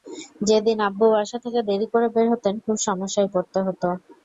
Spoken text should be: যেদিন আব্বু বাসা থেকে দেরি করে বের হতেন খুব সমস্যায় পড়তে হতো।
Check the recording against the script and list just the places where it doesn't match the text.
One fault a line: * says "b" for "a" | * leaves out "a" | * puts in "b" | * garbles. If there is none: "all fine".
all fine